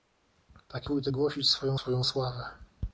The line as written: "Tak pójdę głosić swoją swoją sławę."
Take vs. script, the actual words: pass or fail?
pass